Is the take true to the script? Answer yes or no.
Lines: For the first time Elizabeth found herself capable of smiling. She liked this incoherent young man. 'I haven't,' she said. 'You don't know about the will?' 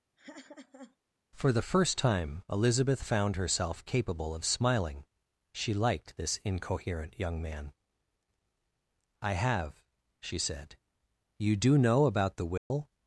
no